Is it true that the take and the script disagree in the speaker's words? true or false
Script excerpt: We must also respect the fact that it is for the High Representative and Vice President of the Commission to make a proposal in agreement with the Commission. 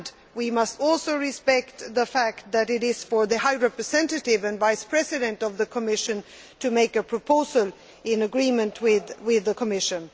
false